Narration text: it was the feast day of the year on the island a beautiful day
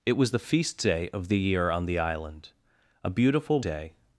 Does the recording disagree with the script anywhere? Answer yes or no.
no